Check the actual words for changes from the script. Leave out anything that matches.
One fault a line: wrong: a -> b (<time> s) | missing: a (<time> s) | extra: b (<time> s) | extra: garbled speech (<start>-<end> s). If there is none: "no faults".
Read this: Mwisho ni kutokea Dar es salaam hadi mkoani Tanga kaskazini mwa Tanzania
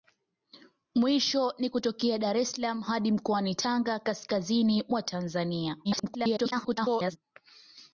extra: garbled speech (5.8-7.2 s)